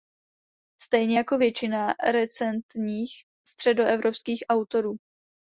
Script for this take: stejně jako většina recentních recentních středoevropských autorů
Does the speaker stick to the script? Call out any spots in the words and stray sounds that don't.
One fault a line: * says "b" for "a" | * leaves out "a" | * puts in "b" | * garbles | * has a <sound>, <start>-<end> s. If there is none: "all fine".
* leaves out "recentních"